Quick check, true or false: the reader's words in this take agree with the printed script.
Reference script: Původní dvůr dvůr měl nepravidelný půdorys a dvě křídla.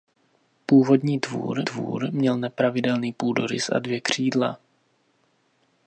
true